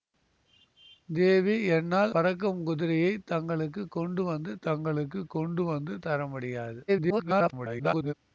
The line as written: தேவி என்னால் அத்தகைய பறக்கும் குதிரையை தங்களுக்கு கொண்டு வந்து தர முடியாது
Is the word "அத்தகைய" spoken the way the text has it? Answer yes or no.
no